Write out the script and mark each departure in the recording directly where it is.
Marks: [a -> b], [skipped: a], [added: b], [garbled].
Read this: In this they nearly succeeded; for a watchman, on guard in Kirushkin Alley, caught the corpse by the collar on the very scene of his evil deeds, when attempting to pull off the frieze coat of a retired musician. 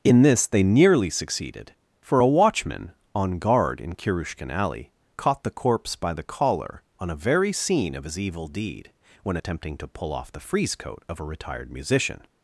In this they nearly succeeded; for a watchman, on guard in Kirushkin Alley, caught the corpse by the collar on [the -> a] very scene of his evil [deeds, -> deed] when attempting to pull off the frieze coat of a retired musician.